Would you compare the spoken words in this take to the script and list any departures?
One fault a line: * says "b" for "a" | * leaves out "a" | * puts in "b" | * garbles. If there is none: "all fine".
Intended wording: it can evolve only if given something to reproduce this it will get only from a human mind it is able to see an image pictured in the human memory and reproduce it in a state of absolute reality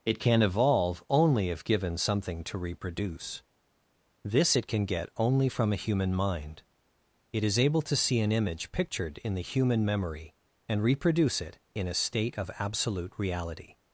* says "can" for "will"